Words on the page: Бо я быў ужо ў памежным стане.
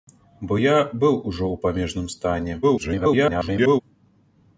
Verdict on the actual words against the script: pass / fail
fail